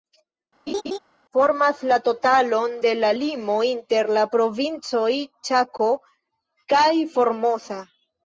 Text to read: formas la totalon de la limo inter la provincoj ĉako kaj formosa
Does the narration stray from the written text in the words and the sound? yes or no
yes